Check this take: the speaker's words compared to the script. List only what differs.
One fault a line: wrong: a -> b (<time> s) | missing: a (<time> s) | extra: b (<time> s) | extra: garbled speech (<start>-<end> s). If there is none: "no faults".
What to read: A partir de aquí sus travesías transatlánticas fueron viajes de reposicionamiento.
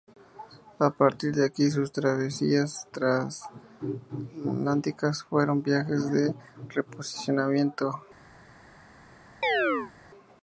no faults